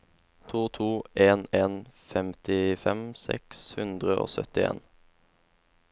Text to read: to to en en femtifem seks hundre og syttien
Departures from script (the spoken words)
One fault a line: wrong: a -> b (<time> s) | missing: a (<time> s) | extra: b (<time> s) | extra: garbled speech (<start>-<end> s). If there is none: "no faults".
no faults